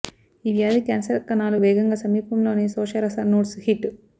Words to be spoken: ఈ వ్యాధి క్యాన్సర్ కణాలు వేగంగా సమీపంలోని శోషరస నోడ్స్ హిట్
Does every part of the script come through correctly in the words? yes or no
yes